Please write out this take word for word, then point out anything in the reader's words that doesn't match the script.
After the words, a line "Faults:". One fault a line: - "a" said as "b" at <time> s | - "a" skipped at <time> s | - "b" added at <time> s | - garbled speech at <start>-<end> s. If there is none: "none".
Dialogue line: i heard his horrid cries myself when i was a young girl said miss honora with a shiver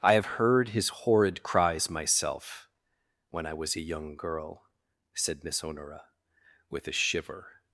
i have heard his horrid cries myself when i was a young girl said miss honora with a shiver
Faults:
- "have" added at 0.1 s